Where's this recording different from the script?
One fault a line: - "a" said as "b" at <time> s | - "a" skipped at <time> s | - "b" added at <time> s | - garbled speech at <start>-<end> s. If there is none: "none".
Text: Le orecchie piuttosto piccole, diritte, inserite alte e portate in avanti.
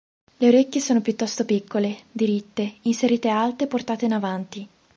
- "sono" added at 0.8 s